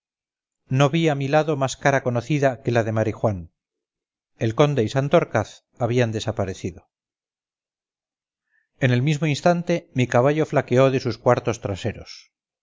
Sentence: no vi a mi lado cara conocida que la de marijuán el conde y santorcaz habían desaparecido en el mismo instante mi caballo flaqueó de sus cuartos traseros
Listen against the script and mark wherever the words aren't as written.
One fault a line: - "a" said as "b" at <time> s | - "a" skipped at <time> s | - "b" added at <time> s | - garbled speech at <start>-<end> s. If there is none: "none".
- "más" added at 1.6 s